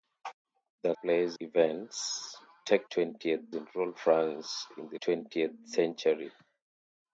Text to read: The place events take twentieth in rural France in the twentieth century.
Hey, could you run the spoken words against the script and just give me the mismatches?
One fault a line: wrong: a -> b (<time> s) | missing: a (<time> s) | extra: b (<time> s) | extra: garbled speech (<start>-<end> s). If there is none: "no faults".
no faults